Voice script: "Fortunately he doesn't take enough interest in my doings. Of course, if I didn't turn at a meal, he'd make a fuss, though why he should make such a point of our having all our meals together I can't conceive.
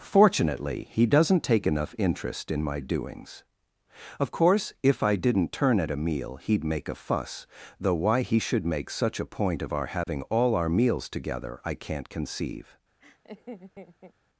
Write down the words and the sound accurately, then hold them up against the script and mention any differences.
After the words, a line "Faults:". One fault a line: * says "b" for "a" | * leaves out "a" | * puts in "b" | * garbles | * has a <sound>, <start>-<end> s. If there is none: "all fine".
"Fortunately he doesn't take enough interest in my doings. Of course, if I didn't turn at a meal, he'd make a fuss, though why he should make such a point of our having all our meals together I can't conceive.
Faults:
* has a dropout, 10.0-10.1 s
* has a laugh, 13.0-14.1 s